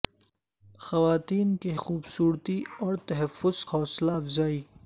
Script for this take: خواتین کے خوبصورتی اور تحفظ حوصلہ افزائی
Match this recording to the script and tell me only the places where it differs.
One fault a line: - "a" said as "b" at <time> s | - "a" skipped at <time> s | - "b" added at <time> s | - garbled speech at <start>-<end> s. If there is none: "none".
none